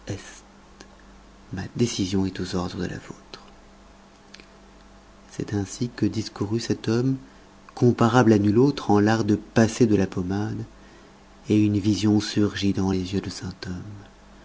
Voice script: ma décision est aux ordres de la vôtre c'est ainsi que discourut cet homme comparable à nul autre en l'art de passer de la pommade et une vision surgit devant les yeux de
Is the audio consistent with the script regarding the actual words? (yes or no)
yes